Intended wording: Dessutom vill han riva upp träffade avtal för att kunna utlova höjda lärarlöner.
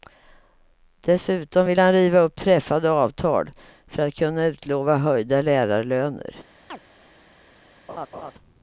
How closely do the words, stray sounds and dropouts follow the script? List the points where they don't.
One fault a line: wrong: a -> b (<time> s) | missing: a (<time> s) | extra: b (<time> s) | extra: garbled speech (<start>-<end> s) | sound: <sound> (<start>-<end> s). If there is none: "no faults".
sound: chirp (6.7-6.8 s)
sound: laugh (7.9-8.3 s)